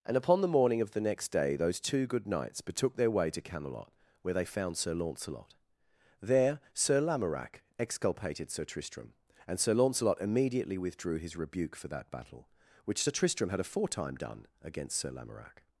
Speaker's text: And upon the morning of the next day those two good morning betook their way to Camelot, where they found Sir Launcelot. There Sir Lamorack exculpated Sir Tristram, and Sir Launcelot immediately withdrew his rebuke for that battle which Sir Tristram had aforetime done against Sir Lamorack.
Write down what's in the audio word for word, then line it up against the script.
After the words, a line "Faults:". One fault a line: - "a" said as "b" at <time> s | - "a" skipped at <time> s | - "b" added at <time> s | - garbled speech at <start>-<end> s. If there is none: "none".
And upon the morning of the next day those two good knights betook their way to Camelot, where they found Sir Launcelot. There Sir Lamorack exculpated Sir Tristram, and Sir Launcelot immediately withdrew his rebuke for that battle which Sir Tristram had aforetime done against Sir Lamorack.
Faults:
- "morning" said as "knights" at 2.2 s